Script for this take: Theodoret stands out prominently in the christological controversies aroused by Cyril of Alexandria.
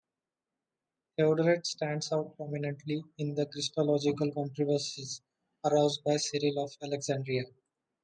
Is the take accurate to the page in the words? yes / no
yes